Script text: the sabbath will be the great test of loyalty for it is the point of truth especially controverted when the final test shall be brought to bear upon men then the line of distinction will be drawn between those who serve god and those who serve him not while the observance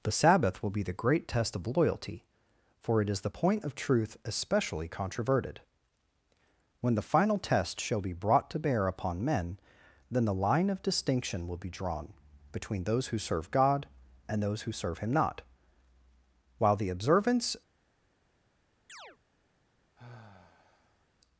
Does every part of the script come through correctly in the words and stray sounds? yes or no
no